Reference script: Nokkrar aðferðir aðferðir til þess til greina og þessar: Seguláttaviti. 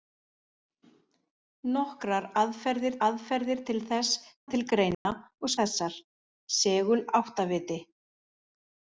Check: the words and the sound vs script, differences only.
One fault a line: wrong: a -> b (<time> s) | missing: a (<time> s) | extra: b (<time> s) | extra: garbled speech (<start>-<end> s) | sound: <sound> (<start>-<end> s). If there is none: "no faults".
sound: dropout (4.9-5.1 s)